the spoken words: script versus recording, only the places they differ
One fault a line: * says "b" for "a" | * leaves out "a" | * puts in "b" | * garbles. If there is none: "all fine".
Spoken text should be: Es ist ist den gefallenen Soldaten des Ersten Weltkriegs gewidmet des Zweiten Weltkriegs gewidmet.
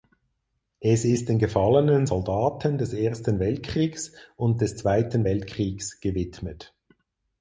* leaves out "ist"
* says "und" for "gewidmet"